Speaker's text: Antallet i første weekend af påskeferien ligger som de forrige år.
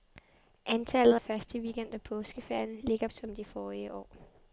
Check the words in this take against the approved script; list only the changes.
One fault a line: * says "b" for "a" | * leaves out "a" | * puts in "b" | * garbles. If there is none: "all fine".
all fine